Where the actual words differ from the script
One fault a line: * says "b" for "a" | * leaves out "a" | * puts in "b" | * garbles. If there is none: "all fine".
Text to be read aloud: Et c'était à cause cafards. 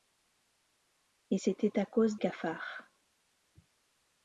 all fine